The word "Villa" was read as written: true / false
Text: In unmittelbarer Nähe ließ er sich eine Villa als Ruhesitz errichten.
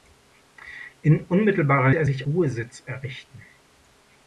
false